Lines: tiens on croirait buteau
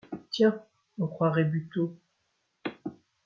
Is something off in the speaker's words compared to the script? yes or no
no